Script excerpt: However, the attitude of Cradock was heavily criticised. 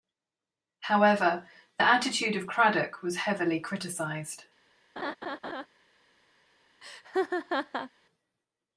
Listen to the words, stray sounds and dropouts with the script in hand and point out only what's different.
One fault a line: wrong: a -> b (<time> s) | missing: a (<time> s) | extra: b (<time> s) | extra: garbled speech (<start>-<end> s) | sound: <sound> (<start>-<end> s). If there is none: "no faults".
sound: laugh (5.0-5.7 s)
sound: laugh (6.8-7.9 s)